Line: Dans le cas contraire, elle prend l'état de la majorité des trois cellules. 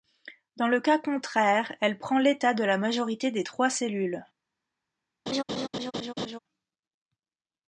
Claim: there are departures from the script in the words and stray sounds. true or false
true